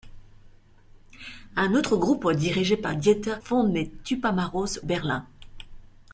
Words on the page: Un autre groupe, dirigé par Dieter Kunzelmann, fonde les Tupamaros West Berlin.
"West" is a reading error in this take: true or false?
true